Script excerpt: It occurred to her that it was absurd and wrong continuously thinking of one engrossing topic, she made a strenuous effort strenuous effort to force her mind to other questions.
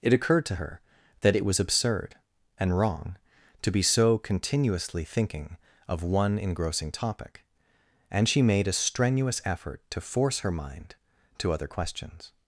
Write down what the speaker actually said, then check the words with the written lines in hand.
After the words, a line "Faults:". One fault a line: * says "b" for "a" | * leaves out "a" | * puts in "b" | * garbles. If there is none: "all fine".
It occurred to her that it was absurd and wrong to be so continuously thinking of one engrossing topic, and she made a strenuous effort to force her mind to other questions.
Faults:
* puts in "to be so"
* puts in "and"
* leaves out "strenuous effort"